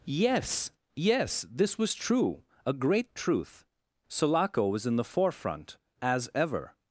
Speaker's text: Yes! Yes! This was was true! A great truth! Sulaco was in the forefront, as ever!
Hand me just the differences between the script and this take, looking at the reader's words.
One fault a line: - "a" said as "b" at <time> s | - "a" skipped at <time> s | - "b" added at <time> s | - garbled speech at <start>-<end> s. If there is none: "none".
- "was" skipped at 1.9 s